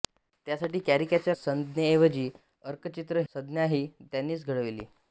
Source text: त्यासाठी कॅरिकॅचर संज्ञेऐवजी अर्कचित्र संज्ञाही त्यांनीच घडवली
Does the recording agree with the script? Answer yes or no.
yes